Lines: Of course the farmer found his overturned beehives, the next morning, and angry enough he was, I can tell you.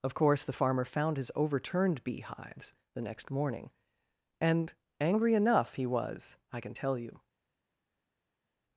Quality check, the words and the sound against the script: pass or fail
pass